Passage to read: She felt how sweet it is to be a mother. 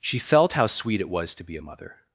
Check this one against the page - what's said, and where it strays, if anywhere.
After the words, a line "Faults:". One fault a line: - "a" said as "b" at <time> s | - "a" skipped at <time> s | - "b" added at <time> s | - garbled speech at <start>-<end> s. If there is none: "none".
She felt how sweet it was to be a mother.
Faults:
- "is" said as "was" at 1.1 s